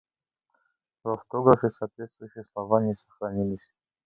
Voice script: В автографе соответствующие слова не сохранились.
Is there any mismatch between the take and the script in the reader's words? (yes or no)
no